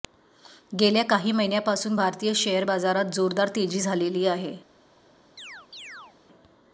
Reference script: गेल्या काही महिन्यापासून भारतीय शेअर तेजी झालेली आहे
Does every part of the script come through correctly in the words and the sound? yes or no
no